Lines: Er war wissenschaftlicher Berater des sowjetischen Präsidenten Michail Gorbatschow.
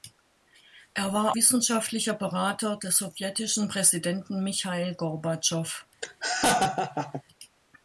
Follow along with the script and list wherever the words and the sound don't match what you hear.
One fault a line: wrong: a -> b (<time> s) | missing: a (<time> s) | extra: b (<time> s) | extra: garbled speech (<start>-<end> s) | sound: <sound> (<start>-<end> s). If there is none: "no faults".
sound: laugh (6.0-7.2 s)